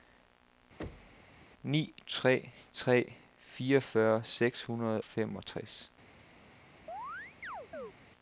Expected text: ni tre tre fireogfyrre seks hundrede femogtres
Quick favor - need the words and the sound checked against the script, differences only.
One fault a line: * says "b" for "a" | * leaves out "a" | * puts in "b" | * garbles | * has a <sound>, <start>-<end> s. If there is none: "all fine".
* has a thud, 0.8-1.3 s
* has a chirp, 6.9-7.9 s